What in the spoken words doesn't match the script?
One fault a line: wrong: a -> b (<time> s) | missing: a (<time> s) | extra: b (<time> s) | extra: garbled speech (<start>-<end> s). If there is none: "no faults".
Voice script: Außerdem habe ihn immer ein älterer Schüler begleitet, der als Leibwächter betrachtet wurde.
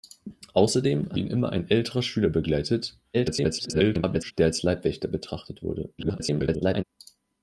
missing: habe (1.2 s)
extra: garbled speech (3.1-4.3 s)
extra: garbled speech (6.0-6.8 s)